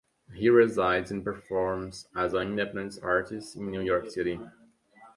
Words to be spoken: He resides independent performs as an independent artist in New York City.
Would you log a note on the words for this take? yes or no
yes